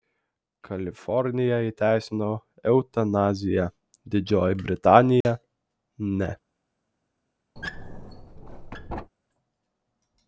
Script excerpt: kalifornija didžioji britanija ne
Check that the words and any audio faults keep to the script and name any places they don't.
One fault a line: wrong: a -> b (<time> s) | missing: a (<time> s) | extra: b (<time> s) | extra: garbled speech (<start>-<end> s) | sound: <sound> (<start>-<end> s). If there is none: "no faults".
extra: įteisino eutanaziją (1.6 s)
sound: dropout (5.2-5.2 s)
sound: squeak (7.6-9.1 s)